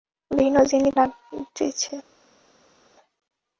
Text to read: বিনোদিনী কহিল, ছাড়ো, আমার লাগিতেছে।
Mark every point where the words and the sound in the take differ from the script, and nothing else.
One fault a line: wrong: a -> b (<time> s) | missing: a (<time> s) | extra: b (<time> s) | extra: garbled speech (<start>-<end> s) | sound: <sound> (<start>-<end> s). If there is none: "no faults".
missing: কহিল ছাড়ো আমার (0.9 s)